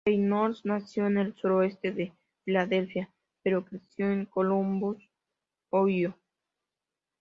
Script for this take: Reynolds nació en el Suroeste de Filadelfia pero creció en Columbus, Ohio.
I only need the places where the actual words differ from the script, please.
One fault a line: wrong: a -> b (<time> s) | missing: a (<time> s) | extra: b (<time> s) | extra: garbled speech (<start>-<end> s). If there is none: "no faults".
no faults